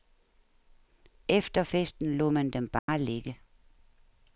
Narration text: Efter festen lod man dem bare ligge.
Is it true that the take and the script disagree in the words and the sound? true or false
true